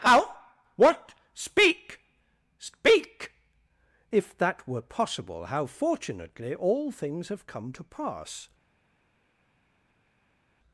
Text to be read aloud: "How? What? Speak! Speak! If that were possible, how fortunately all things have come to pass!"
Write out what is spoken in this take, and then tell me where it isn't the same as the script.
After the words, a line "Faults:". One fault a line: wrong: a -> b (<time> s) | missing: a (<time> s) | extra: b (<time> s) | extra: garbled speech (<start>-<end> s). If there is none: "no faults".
"How? What? Speak! Speak! If that were possible, how fortunately all things have come to pass!"
Faults:
no faults